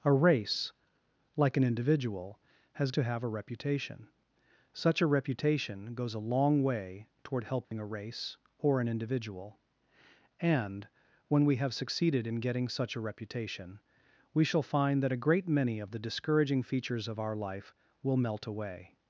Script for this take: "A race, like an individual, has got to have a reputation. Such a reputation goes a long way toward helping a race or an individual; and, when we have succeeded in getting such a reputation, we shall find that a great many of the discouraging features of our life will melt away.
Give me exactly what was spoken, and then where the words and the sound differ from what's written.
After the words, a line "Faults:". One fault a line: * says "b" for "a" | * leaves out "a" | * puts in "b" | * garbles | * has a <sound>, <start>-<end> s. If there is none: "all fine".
"A race, like an individual, has to have a reputation. Such a reputation goes a long way toward helping a race or an individual; and, when we have succeeded in getting such a reputation, we shall find that a great many of the discouraging features of our life will melt away.
Faults:
* leaves out "got"
* has a dropout, 7.6-7.7 s